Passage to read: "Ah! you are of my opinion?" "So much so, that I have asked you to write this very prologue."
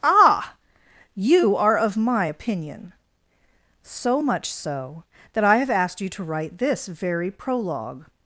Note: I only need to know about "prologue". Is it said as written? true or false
true